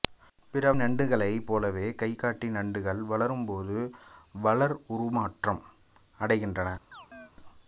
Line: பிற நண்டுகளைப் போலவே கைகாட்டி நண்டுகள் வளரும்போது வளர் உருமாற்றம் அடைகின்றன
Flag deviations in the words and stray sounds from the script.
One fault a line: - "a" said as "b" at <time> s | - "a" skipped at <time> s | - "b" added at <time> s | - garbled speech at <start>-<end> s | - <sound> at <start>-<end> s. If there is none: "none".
- chirp at 6.9-7.3 s